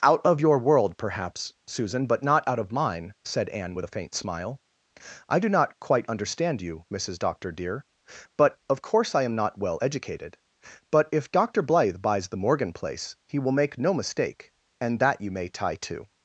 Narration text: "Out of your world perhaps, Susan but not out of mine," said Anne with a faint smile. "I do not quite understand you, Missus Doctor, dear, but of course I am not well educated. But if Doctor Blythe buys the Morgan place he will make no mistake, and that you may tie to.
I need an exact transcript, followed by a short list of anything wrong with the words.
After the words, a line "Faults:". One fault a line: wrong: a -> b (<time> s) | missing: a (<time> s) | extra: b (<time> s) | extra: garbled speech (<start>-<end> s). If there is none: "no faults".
"Out of your world perhaps, Susan but not out of mine," said Anne with a faint smile. "I do not quite understand you, Missus Doctor, dear, but of course I am not well educated. But if Doctor Blythe buys the Morgan place he will make no mistake, and that you may tie to.
Faults:
no faults